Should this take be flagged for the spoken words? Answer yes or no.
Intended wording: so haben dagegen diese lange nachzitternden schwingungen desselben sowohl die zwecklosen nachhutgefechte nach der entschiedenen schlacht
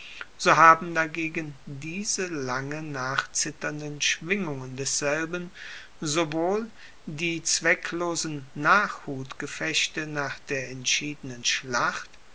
no